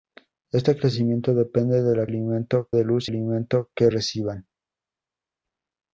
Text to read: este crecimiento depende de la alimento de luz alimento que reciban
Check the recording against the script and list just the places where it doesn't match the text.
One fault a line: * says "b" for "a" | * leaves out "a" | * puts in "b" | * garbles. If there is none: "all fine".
all fine